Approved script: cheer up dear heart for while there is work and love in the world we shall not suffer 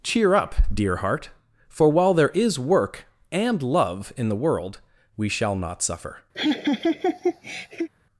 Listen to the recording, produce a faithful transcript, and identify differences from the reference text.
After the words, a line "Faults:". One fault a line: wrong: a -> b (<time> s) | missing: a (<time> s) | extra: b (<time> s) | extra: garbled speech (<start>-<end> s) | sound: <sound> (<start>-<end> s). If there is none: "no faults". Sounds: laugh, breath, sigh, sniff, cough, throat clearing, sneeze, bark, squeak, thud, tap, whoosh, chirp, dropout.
cheer up dear heart for while there is work and love in the world we shall not suffer
Faults:
sound: laugh (6.3-7.9 s)